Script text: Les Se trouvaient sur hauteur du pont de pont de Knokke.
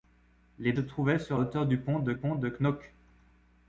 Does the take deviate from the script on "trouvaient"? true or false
false